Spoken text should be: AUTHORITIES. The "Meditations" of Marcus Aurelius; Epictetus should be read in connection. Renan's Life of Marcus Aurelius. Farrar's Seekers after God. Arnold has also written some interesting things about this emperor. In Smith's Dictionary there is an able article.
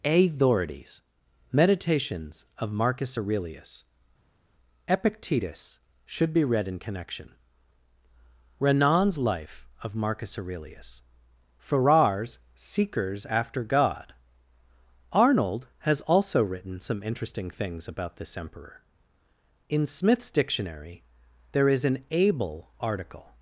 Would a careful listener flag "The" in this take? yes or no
yes